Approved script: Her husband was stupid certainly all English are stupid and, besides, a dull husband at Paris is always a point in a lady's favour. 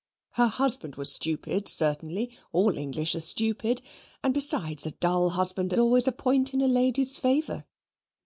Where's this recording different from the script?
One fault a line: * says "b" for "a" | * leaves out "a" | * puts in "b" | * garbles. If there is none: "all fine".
* leaves out "at Paris is"